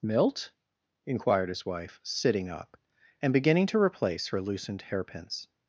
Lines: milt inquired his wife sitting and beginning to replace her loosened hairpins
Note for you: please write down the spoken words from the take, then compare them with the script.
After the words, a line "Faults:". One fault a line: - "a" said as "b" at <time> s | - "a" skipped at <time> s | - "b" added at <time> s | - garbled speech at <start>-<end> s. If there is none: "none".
milt inquired his wife sitting up and beginning to replace her loosened hairpins
Faults:
- "up" added at 2.5 s